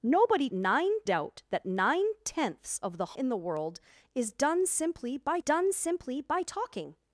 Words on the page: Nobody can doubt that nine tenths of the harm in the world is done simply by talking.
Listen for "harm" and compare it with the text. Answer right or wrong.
wrong